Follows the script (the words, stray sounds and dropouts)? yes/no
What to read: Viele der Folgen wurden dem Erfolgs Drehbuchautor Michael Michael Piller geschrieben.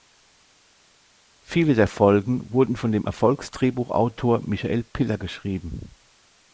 no